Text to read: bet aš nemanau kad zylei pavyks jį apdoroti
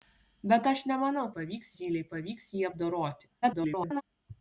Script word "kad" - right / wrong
wrong